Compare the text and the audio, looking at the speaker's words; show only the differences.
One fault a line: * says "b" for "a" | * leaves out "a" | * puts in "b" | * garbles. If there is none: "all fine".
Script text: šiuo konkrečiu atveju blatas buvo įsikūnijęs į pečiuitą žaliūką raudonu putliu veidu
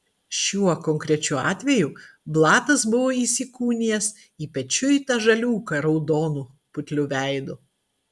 all fine